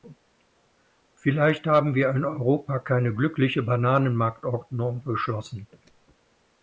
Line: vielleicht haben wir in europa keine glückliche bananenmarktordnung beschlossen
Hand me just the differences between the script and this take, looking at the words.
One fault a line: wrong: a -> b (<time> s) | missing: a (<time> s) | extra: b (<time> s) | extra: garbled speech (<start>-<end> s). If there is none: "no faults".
no faults